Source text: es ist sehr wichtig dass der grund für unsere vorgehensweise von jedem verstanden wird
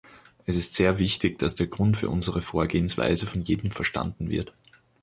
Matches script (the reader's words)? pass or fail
pass